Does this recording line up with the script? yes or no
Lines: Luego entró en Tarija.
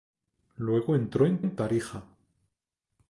no